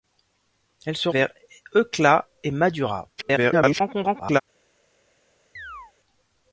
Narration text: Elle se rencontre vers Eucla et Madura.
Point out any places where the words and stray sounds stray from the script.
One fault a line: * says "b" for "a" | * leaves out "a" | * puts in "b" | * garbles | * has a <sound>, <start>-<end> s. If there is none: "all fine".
* leaves out "rencontre"
* garbles
* has a chirp, 5.6-5.9 s